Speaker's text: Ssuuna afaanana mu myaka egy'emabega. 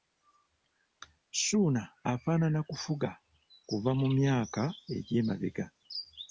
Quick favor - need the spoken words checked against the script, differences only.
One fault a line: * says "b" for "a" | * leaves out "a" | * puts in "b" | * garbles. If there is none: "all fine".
* puts in "kufuga kuva"